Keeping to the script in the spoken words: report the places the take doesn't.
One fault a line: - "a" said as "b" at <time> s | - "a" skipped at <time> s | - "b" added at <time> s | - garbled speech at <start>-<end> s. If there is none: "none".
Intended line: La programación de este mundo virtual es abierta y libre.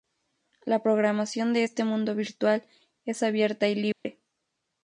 none